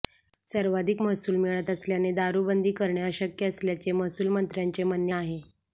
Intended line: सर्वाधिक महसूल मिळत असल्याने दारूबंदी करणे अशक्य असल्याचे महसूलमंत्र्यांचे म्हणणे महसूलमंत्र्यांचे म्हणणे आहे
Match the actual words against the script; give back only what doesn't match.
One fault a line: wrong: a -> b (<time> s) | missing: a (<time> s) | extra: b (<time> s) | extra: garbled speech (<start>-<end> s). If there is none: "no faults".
missing: महसूलमंत्र्यांचे म्हणणे (5.1 s)